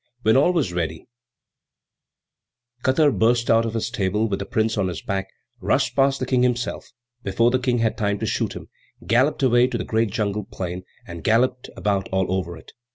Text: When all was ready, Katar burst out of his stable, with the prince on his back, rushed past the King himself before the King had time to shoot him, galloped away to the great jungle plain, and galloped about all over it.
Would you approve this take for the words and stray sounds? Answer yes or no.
yes